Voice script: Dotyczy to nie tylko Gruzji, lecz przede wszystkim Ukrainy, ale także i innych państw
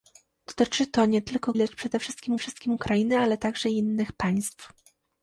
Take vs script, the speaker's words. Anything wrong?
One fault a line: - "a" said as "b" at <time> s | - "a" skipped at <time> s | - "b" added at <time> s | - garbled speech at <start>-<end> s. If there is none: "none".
- "Gruzji" skipped at 1.5 s
- "wszystkim" added at 2.4 s